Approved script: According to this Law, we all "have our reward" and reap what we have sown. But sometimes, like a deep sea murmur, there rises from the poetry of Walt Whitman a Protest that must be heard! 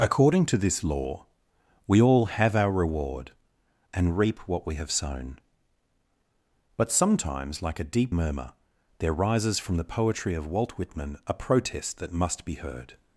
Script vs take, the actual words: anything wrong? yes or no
yes